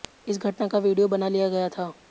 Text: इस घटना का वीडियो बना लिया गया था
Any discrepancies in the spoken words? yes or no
no